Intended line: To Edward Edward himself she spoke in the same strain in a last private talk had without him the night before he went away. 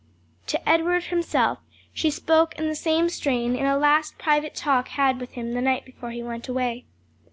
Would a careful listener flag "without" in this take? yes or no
yes